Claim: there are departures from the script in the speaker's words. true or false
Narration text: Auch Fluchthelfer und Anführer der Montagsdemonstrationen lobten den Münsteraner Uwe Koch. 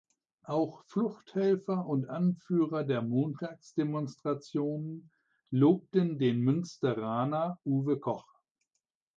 false